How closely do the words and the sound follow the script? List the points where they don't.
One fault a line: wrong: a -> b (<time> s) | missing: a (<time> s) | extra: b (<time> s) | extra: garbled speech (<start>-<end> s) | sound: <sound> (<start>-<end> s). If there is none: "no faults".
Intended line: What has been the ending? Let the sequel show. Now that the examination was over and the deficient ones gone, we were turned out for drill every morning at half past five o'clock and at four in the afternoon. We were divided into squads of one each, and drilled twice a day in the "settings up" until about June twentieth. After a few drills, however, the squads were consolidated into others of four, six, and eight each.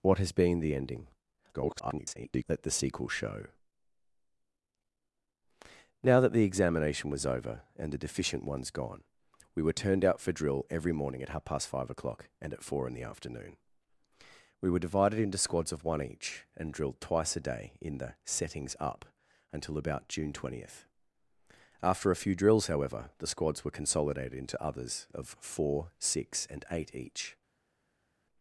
extra: garbled speech (1.5-2.4 s)